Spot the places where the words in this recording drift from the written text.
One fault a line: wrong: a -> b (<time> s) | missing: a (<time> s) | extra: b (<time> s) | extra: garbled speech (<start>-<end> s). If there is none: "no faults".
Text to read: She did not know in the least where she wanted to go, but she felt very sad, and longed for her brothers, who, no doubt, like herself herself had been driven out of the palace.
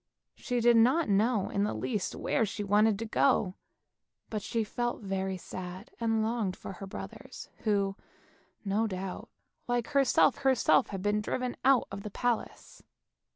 no faults